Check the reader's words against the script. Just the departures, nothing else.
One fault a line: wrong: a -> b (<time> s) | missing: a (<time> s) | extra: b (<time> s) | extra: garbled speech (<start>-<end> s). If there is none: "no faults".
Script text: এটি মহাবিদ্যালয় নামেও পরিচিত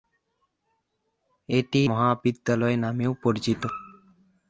no faults